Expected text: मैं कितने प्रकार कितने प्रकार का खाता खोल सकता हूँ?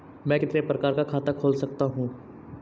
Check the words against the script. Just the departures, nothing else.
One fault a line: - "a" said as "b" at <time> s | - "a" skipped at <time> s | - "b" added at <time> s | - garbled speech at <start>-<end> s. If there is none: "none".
- "कितने प्रकार" skipped at 0.9 s